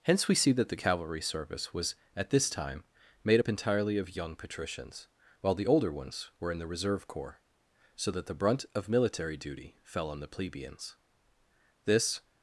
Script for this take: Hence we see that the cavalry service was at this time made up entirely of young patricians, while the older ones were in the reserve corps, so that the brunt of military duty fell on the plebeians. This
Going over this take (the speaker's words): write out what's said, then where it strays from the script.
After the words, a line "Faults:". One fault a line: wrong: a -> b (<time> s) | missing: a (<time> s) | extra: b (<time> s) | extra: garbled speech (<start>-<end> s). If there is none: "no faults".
Hence we see that the cavalry service was at this time made up entirely of young patricians, while the older ones were in the reserve corps, so that the brunt of military duty fell on the plebeians. This
Faults:
no faults